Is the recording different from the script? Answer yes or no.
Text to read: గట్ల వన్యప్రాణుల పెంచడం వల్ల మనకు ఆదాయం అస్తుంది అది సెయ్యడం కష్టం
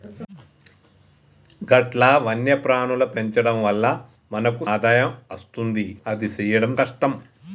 no